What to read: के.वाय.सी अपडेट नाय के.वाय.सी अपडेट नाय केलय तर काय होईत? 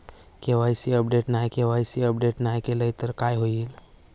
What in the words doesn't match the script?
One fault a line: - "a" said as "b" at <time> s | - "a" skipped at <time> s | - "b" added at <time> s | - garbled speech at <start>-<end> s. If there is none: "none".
none